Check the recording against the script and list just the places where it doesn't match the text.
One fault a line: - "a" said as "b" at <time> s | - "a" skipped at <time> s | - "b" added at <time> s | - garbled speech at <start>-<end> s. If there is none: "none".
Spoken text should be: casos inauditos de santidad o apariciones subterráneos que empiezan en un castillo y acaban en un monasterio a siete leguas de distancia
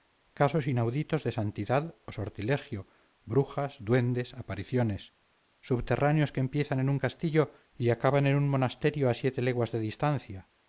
- "sortilegio brujas duendes" added at 2.1 s